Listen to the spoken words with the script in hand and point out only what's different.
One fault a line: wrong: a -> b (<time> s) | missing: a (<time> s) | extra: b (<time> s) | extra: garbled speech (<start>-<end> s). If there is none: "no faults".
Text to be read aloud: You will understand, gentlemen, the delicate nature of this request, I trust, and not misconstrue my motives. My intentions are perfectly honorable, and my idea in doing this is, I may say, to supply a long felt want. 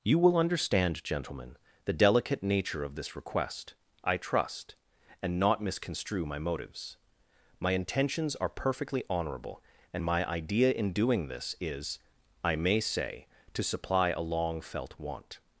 no faults